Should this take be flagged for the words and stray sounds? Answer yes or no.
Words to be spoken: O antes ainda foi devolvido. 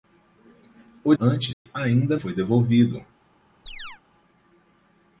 yes